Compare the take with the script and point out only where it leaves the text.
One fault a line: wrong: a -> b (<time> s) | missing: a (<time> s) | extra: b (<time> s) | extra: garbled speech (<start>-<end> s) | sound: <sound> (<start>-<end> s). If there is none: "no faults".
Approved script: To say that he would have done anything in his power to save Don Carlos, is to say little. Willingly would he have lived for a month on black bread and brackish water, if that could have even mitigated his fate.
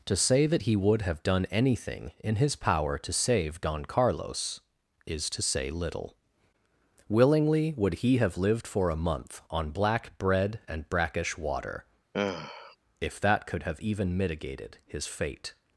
sound: sigh (12.1-12.8 s)